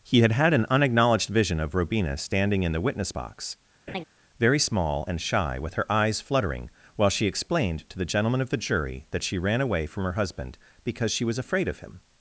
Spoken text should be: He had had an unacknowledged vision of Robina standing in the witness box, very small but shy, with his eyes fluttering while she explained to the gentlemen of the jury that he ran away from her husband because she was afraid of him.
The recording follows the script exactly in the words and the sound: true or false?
false